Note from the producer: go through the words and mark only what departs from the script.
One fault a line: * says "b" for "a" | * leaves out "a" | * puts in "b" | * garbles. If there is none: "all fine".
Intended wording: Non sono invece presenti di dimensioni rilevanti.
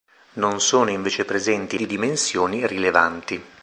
all fine